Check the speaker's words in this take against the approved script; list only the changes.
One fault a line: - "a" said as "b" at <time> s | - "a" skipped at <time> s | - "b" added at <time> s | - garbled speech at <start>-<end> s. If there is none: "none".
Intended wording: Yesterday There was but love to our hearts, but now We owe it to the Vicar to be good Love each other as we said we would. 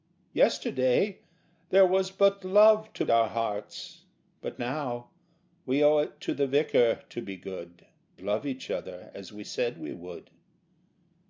none